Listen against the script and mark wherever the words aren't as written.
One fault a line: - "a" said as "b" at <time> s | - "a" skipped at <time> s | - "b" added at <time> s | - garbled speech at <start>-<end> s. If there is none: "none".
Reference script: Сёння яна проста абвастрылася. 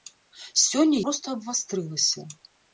- "яна" skipped at 1.0 s